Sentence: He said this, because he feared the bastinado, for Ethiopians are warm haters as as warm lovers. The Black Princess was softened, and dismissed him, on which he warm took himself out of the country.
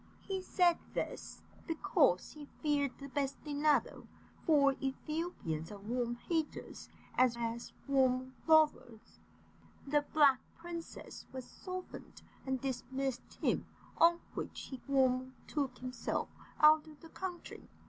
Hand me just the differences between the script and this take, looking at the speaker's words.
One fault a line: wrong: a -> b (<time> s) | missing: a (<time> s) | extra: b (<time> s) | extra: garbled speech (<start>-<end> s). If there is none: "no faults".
no faults